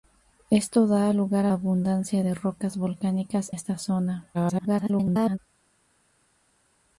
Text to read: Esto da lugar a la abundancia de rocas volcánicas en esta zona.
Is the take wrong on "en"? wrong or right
wrong